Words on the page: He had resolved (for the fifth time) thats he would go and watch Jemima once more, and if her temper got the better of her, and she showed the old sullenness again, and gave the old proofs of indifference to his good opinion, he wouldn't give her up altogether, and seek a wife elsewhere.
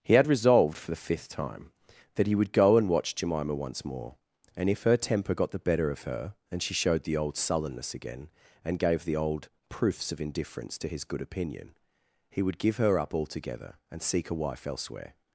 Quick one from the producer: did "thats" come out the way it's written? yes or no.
no